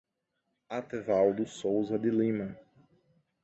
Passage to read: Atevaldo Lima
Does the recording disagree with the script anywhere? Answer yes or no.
yes